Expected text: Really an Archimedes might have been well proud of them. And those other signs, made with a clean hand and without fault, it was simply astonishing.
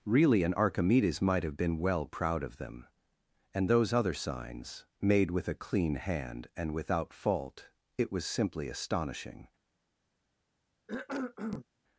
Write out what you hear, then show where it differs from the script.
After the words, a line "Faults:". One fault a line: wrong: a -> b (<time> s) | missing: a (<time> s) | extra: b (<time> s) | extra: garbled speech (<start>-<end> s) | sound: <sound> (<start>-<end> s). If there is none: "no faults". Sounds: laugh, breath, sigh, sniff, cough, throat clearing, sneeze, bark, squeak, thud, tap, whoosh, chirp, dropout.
Really an Archimedes might have been well proud of them. And those other signs, made with a clean hand and without fault, it was simply astonishing.
Faults:
sound: cough (10.9-11.7 s)